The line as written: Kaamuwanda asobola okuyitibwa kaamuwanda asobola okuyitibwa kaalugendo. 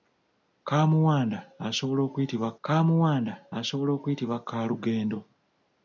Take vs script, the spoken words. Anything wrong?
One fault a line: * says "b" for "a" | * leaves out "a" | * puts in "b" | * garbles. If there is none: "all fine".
all fine